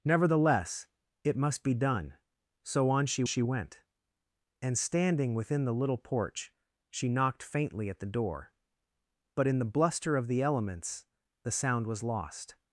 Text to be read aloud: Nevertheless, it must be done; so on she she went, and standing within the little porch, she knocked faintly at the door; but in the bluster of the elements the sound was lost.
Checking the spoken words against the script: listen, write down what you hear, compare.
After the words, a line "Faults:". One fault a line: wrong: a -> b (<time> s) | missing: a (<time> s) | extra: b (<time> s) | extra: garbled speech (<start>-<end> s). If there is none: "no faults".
Nevertheless, it must be done; so on she she went, and standing within the little porch, she knocked faintly at the door; but in the bluster of the elements the sound was lost.
Faults:
no faults